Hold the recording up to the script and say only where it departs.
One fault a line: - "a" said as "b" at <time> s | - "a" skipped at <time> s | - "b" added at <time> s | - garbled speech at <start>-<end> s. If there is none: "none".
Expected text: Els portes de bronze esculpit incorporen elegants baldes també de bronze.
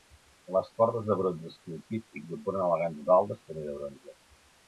- "Els" said as "Les" at 0.5 s